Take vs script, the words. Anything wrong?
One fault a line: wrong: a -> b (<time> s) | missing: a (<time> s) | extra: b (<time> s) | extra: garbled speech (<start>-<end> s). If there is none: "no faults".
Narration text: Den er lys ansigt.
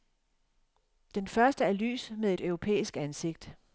extra: første (1.3 s)
extra: med et europæisk (2.2 s)